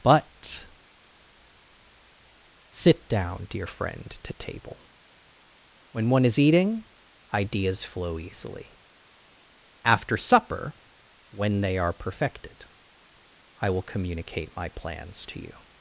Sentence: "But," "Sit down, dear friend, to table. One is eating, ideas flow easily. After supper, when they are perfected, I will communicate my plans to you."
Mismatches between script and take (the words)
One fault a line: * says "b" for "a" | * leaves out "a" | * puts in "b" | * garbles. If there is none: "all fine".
* puts in "When"